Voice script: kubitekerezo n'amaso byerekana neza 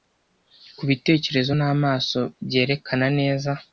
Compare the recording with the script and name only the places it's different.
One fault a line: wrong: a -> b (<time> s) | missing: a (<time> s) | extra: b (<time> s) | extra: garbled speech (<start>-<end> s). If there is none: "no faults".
no faults